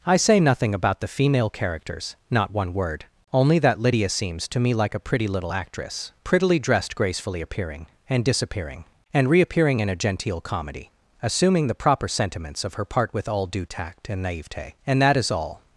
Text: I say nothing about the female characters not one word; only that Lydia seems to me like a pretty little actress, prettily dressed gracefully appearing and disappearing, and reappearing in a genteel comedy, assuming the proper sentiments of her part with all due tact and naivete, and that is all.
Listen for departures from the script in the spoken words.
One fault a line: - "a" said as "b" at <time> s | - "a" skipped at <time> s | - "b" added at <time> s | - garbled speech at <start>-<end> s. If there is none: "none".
none